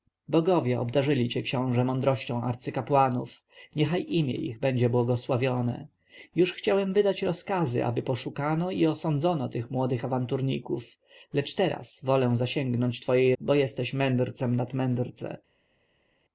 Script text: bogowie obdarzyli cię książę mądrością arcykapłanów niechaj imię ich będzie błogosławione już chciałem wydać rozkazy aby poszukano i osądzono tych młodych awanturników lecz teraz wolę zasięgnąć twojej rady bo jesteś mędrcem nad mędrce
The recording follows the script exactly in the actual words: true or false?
false